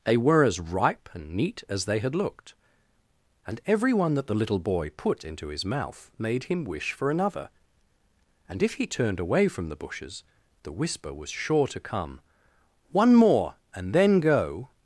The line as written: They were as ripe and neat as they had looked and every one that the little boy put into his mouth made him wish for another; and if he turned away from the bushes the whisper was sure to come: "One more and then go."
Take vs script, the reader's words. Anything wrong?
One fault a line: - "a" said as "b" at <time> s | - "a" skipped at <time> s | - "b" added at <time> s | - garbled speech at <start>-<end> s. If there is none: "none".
none